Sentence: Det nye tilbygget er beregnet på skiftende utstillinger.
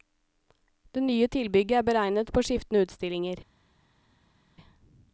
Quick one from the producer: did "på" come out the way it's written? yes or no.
yes